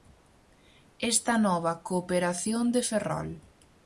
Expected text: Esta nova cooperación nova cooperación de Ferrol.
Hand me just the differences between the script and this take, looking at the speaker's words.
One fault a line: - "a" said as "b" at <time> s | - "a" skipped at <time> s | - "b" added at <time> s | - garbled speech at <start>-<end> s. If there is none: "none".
- "nova cooperación" skipped at 2.6 s